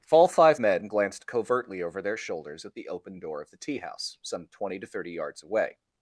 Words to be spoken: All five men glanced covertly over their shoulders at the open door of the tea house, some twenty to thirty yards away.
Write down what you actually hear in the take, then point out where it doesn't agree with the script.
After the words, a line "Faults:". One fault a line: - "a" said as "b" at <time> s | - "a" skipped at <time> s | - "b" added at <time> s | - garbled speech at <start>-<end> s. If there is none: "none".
All five men glanced covertly over their shoulders at the open door of the tea house, some twenty to thirty yards away.
Faults:
none